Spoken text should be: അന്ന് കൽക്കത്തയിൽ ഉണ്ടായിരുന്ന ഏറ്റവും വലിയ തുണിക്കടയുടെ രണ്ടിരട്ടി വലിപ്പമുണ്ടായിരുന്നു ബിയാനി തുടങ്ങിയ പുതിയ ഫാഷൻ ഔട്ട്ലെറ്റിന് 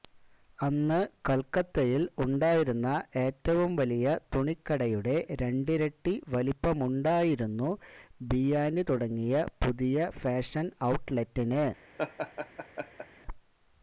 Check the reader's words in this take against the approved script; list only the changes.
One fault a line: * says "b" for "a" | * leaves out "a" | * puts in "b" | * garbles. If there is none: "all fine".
all fine